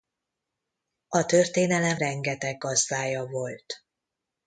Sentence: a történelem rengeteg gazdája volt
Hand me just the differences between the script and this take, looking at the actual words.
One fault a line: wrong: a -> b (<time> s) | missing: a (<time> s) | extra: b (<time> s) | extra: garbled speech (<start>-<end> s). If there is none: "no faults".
no faults